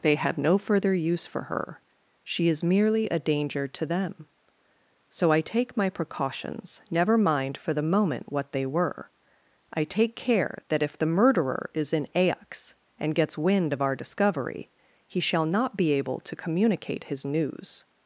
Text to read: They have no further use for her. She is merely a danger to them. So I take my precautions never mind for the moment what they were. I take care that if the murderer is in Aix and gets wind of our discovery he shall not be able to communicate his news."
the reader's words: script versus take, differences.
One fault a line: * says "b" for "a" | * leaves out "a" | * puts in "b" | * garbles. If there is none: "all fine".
all fine